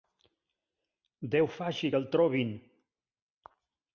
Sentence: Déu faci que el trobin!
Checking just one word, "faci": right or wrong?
right